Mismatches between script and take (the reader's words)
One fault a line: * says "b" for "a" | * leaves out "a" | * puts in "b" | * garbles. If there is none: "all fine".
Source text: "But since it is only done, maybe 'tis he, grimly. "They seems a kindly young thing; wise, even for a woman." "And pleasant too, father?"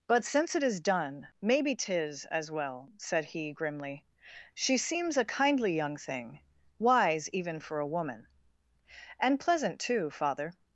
* leaves out "only"
* puts in "as well said"
* says "She" for "They"